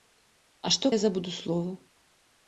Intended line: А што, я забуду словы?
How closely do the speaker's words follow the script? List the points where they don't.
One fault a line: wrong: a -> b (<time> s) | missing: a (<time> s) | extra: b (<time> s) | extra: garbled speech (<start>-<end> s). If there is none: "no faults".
no faults